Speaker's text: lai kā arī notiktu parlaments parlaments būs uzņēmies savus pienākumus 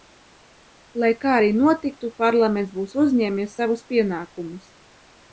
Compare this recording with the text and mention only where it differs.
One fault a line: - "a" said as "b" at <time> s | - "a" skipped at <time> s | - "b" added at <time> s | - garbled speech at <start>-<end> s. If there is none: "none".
- "parlaments" skipped at 2.8 s